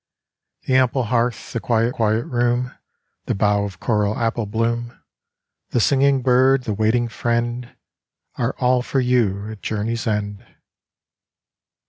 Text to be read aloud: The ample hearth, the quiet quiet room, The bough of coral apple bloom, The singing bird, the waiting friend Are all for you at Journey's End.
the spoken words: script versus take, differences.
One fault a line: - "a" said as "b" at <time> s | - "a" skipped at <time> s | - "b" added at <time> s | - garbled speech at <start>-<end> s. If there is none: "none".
none